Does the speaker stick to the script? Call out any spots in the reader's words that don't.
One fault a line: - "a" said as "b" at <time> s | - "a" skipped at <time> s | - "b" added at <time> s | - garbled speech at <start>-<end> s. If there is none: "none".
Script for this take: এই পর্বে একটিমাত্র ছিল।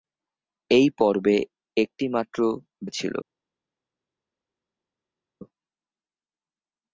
none